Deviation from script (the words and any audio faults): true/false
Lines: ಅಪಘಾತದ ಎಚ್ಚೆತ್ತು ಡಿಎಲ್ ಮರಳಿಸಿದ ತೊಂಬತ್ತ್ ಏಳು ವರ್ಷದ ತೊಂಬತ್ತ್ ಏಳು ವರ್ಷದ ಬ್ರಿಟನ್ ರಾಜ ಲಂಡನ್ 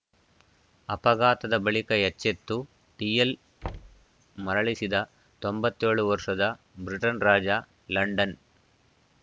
true